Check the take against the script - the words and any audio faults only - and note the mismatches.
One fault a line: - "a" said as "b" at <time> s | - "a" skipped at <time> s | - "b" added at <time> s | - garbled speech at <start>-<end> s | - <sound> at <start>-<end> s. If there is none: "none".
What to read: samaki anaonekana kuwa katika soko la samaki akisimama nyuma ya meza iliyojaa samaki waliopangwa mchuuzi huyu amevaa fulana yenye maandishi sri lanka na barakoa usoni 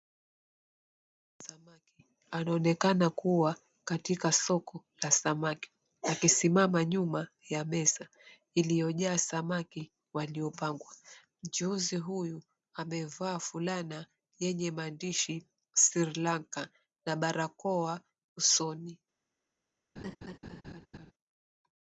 - laugh at 20.0-21.1 s